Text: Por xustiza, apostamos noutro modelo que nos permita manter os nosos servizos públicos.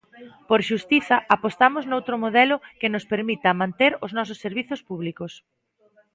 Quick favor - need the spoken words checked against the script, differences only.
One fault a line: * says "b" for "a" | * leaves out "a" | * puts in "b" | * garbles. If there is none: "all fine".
all fine